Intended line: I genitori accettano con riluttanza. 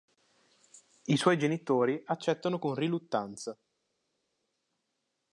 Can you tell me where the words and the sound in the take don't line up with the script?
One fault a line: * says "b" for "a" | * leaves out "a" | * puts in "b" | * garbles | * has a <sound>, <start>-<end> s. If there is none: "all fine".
* puts in "suoi"